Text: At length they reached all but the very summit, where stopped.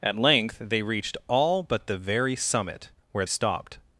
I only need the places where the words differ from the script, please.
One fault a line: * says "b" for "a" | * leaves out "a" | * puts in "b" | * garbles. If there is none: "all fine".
all fine